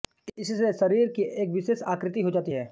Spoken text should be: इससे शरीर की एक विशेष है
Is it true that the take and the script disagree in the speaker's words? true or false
true